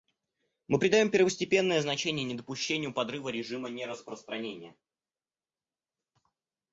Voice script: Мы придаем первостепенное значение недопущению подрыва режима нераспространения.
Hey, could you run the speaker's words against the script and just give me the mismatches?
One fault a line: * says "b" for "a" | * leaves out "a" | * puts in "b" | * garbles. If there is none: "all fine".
all fine